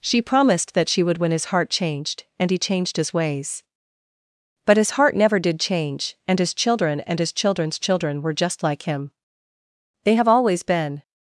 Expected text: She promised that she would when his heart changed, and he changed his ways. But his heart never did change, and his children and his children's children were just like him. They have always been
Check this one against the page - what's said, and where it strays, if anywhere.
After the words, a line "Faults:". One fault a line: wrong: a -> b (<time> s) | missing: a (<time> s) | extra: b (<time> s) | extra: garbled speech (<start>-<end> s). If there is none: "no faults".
She promised that she would when his heart changed, and he changed his ways. But his heart never did change, and his children and his children's children were just like him. They have always been
Faults:
no faults